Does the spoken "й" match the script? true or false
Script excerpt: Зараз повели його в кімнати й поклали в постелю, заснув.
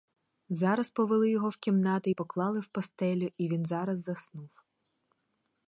true